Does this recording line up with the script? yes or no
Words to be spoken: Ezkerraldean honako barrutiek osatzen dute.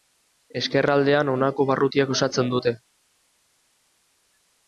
yes